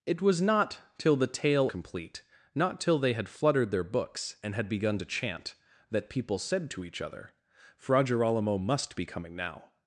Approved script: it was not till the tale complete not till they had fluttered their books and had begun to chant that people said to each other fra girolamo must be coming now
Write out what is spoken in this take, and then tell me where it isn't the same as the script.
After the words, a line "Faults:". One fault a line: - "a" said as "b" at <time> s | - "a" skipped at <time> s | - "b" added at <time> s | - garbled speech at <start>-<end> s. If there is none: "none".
it was not till the tale complete not till they had fluttered their books and had begun to chant that people said to each other fra girolamo must be coming now
Faults:
none